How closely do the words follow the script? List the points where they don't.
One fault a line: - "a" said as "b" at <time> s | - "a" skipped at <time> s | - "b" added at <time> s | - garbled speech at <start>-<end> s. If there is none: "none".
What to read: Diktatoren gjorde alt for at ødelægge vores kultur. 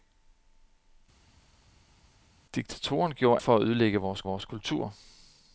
- "alt" skipped at 3.4 s
- "vores" added at 4.2 s